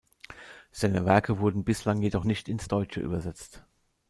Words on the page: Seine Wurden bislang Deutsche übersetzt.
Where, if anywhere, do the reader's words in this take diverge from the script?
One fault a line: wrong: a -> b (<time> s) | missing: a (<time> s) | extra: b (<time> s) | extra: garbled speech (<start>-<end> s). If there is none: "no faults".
extra: Werke (1.1 s)
extra: jedoch nicht ins (2.0 s)